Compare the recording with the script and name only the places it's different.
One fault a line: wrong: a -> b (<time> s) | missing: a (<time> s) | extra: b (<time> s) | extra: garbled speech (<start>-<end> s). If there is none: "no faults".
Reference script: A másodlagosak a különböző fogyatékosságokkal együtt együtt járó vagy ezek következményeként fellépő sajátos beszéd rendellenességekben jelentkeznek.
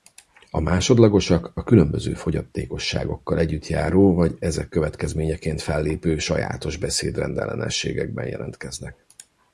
missing: együtt (3.7 s)